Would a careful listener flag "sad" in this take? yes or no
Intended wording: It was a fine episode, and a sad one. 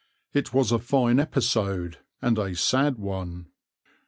no